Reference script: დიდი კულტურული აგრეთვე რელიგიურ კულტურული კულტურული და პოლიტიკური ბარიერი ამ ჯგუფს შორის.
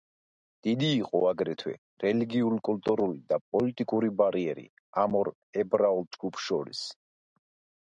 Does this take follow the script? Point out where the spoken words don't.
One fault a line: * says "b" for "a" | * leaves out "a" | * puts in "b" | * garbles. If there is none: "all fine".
* says "იყო" for "კულტურული"
* leaves out "კულტურული"
* puts in "ორ ებრაულ"